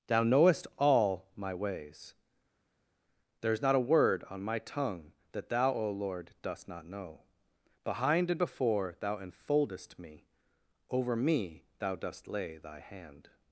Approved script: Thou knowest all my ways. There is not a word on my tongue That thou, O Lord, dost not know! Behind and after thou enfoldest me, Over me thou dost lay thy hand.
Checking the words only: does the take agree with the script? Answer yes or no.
no